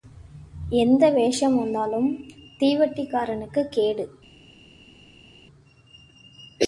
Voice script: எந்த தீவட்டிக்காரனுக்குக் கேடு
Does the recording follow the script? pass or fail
fail